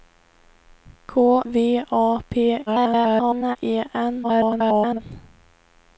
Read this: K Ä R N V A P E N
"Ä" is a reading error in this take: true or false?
true